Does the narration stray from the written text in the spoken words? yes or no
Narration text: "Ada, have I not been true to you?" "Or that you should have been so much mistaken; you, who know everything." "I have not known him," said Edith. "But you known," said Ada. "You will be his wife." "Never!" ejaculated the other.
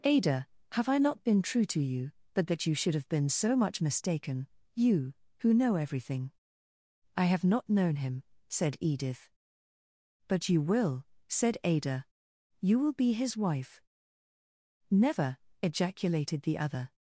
yes